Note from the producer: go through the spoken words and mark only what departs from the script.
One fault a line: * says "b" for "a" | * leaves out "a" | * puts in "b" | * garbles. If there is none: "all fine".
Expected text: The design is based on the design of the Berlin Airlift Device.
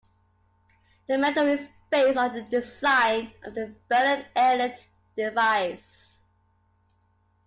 * says "medal" for "design"